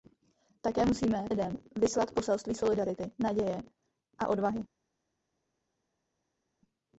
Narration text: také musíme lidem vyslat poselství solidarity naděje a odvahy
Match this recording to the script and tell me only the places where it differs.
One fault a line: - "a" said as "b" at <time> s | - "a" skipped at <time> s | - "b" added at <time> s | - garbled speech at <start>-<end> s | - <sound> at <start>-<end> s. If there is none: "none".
none